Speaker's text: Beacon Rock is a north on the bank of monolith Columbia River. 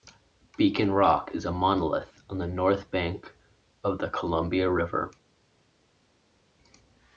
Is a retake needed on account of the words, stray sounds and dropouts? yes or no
yes